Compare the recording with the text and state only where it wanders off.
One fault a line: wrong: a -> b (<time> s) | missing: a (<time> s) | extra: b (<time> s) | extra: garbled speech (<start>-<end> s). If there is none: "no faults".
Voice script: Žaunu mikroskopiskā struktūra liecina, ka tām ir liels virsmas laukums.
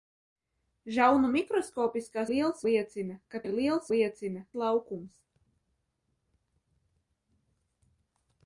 wrong: struktūra -> liels (2.3 s)
missing: tām (3.4 s)
wrong: virsmas -> liecina (3.9 s)